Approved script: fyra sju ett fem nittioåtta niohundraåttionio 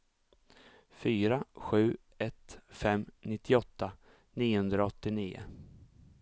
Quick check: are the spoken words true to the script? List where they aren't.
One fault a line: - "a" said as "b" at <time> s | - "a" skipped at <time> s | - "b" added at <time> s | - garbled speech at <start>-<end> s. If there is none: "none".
none